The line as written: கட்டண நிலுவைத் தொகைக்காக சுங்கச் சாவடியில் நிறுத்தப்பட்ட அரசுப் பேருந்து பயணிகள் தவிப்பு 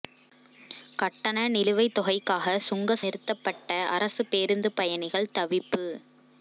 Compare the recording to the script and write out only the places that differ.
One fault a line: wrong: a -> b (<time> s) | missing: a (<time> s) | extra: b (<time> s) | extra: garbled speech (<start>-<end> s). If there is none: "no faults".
missing: சாவடியில் (3.0 s)